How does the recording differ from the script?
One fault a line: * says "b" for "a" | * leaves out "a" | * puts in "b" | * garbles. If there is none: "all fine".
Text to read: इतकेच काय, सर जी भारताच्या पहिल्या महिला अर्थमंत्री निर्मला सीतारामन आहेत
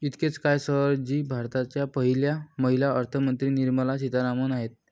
all fine